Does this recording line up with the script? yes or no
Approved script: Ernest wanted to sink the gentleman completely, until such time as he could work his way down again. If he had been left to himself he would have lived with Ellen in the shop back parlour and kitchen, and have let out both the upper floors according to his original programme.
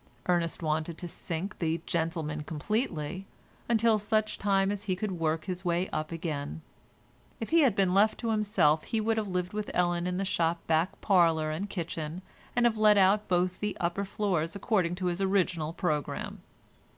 no